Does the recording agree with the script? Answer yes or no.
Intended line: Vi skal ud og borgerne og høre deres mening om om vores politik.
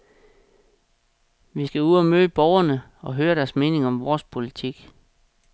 no